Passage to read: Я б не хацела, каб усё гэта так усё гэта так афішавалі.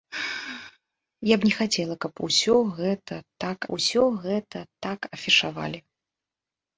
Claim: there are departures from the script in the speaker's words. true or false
false